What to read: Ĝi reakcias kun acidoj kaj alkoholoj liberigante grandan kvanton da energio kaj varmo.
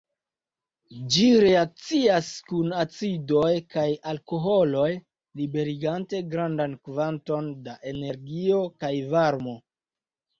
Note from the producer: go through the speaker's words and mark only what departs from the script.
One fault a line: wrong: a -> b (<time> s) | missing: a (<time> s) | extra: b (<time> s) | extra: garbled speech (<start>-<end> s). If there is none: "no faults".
no faults